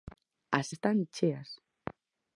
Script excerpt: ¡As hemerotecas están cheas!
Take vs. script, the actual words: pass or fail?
fail